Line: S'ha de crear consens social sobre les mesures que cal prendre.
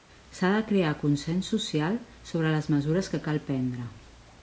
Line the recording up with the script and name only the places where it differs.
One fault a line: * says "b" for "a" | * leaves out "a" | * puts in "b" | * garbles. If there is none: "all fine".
all fine